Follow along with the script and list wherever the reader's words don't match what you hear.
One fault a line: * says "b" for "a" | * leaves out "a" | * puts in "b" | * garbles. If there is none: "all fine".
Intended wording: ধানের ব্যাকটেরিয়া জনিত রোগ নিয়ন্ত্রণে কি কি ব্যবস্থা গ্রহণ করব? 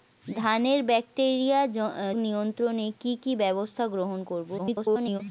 * leaves out "জনিত রোগ"
* garbles